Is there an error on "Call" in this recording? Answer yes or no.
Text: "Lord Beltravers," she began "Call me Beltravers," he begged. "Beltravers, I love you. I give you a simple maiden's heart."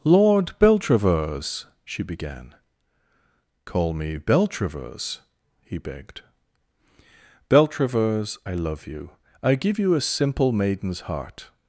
no